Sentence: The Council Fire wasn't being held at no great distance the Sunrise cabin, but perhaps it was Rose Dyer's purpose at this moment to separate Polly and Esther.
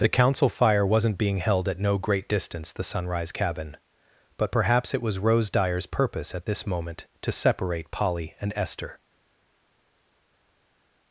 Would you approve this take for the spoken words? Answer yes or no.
yes